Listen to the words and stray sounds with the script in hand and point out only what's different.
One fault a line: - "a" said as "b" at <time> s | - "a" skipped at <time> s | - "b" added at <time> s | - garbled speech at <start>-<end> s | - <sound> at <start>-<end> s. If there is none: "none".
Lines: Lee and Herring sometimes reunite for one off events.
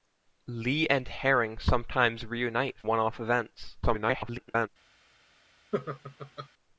- "for" skipped at 2.8 s
- garbled speech at 3.8-4.7 s
- laugh at 5.7-6.5 s